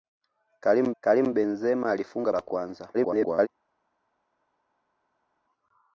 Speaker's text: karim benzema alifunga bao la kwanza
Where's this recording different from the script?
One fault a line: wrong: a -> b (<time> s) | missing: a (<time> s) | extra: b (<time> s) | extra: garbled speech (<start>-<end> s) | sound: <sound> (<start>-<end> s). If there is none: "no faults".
extra: karim (1.0 s)
missing: bao (2.3 s)
extra: garbled speech (2.9-3.5 s)